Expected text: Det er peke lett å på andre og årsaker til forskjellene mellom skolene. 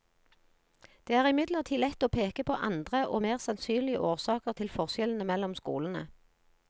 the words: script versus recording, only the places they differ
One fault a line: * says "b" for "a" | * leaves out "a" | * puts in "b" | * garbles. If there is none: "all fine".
* says "imidlertid" for "peke"
* puts in "peke"
* puts in "mer sannsynlige"